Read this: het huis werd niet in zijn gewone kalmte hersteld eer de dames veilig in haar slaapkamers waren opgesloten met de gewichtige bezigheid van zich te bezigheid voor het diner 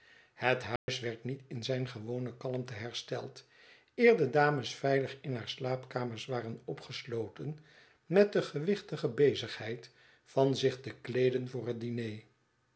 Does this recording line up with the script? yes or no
no